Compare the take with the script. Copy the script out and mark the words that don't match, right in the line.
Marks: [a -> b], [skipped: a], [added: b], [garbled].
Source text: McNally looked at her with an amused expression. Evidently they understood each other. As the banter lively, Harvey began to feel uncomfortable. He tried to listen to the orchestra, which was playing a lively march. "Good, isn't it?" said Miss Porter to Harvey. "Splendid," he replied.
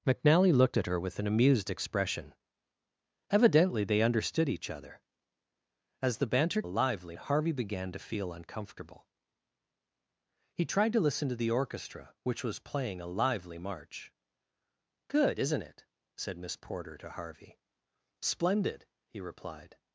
McNally looked at her with an amused expression. Evidently they understood each other. As the banter lively, Harvey began to feel uncomfortable. He tried to listen to the orchestra, which was playing a lively march. "Good, isn't it?" said Miss Porter to Harvey. "Splendid," he replied.